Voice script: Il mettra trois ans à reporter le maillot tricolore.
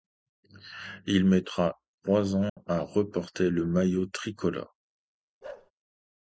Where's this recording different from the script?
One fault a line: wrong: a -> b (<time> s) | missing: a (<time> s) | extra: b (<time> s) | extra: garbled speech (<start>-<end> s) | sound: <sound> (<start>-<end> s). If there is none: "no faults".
sound: dropout (2.5-2.6 s)
sound: bark (5.4-5.7 s)